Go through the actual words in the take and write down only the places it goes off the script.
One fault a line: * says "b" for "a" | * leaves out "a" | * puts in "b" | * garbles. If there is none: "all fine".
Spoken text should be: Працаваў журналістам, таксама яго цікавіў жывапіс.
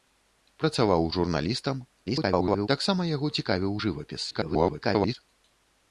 * garbles
* garbles